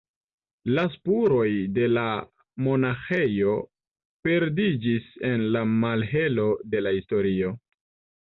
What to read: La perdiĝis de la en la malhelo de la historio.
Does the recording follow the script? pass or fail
fail